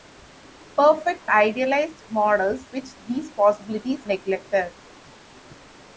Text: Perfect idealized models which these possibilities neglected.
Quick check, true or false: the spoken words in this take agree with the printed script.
true